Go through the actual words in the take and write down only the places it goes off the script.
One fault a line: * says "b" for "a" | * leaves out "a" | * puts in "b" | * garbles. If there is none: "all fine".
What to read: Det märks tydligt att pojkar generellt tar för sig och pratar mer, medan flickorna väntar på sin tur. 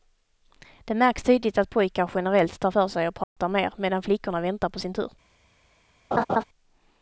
all fine